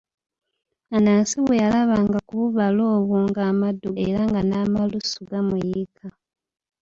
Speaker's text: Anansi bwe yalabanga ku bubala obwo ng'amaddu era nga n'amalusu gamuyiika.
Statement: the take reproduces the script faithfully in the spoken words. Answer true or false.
true